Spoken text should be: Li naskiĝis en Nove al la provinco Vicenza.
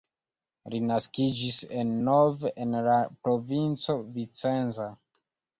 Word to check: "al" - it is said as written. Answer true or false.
false